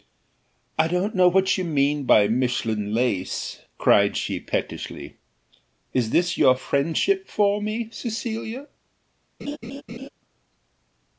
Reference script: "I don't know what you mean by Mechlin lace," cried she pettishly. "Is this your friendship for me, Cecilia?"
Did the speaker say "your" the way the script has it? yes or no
yes